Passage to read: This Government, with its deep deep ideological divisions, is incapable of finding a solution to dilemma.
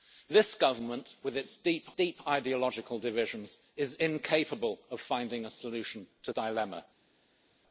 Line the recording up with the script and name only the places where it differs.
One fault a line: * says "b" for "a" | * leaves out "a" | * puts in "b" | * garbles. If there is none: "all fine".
all fine